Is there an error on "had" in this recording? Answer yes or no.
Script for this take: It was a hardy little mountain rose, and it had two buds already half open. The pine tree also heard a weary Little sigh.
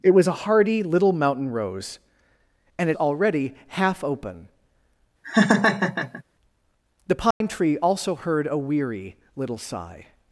yes